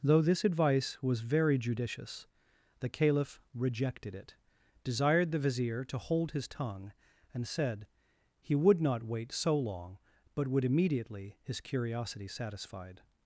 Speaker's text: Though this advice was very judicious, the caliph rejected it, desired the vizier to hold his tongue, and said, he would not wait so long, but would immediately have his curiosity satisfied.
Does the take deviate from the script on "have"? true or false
true